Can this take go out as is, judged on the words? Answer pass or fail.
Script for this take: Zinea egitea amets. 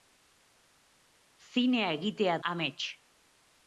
pass